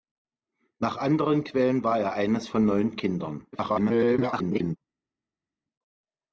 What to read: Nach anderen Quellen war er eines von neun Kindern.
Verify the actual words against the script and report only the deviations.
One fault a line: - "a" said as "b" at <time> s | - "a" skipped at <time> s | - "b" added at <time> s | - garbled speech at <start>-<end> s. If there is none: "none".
- garbled speech at 3.5-4.8 s